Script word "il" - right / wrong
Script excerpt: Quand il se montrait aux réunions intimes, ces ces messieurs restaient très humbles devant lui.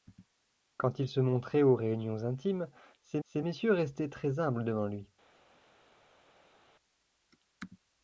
right